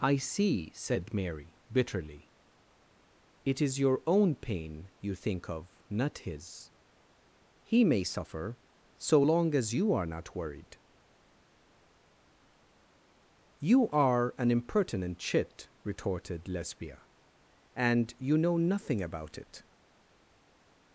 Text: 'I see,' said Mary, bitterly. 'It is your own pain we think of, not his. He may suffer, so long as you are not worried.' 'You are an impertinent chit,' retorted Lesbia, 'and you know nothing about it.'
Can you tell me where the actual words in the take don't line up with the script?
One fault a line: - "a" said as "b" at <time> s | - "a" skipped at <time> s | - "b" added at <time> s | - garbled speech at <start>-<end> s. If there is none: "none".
- "we" said as "you" at 5.0 s